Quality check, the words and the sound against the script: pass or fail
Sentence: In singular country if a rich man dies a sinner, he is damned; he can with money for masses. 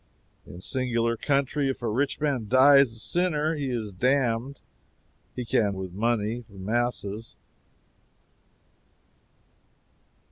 pass